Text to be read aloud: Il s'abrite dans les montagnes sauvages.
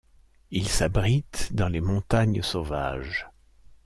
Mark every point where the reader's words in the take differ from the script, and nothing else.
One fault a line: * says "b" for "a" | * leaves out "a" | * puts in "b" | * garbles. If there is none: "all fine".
all fine